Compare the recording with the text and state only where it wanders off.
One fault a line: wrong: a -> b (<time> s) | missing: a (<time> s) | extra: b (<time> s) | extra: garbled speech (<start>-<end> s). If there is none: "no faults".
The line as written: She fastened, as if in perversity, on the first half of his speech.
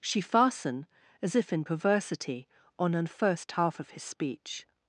wrong: fastened -> fasten (0.2 s)
wrong: the -> an (3.0 s)